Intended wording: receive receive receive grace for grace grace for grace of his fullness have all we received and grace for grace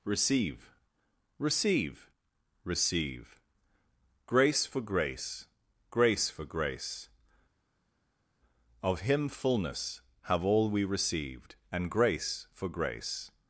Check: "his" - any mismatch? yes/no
yes